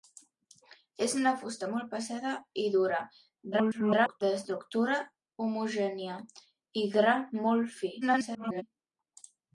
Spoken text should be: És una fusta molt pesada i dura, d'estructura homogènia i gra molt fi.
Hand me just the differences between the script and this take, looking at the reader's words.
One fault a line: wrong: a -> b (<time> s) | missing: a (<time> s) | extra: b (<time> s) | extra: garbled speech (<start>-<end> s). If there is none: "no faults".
extra: garbled speech (3.5-4.2 s)
extra: garbled speech (8.0-8.6 s)